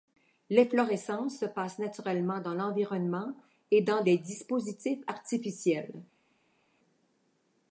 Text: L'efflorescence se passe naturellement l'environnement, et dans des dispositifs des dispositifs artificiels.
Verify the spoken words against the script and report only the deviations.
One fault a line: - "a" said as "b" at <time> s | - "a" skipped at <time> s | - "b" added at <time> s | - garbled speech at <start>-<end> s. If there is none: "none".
- "dans" added at 2.4 s
- "des dispositifs" skipped at 5.0 s